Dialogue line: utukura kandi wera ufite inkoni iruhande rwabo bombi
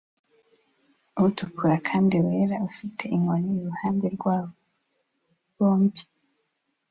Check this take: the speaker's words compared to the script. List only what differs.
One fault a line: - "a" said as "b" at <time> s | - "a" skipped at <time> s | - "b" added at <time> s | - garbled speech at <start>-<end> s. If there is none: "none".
none